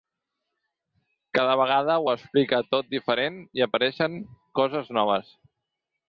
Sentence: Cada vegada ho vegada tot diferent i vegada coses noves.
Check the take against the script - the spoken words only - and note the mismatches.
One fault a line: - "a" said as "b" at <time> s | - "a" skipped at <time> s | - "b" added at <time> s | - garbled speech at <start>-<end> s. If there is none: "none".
- "vegada" said as "explica" at 2.1 s
- "vegada" said as "apareixen" at 3.7 s